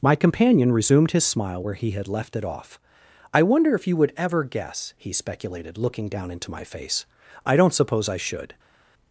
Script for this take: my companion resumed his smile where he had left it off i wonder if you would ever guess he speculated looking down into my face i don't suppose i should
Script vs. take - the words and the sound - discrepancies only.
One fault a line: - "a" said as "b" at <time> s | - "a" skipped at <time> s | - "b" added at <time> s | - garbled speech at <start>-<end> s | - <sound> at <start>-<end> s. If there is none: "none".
none